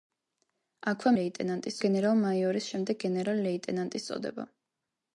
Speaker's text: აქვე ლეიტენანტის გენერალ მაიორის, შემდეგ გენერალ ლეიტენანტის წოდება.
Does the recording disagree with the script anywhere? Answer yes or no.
no